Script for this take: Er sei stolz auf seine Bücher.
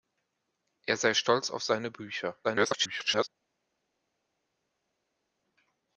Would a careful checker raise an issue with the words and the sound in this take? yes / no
yes